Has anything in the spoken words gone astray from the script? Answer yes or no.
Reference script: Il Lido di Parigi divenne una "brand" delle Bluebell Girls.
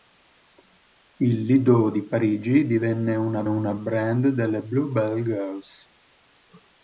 yes